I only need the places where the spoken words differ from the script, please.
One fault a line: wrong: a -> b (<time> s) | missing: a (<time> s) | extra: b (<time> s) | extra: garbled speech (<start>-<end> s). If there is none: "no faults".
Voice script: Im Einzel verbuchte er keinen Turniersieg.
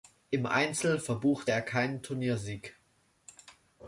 no faults